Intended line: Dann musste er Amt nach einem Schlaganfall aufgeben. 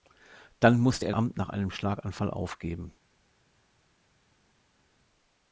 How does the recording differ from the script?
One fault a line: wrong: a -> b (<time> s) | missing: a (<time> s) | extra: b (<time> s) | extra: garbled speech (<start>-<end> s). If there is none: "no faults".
no faults